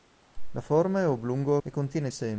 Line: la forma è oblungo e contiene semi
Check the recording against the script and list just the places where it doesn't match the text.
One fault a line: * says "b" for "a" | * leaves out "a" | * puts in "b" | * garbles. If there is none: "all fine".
all fine